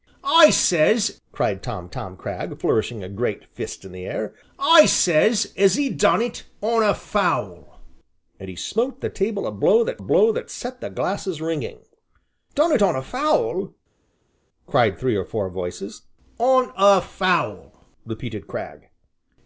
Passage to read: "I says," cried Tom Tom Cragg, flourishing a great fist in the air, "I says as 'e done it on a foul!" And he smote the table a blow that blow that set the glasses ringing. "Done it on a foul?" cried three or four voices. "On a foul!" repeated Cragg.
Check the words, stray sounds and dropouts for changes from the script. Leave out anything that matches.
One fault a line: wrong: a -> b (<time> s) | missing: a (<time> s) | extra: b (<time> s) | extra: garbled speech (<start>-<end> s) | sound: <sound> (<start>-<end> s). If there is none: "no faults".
no faults